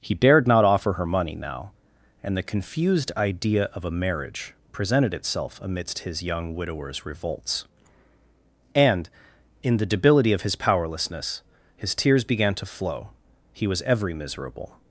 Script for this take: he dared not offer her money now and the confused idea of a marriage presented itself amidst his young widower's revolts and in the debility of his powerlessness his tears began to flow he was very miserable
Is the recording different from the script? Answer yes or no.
yes